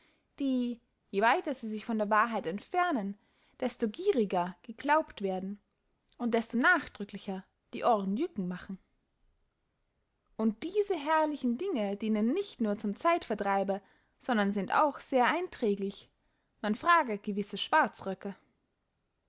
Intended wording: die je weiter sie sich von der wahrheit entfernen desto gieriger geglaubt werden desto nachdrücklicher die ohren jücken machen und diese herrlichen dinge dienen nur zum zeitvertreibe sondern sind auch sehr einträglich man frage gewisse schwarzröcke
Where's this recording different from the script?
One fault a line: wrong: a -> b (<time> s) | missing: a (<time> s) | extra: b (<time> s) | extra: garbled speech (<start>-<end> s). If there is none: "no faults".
extra: und (6.2 s)
extra: nicht (12.3 s)